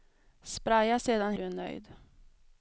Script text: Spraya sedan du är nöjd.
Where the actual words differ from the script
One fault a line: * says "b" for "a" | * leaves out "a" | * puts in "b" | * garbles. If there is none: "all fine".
all fine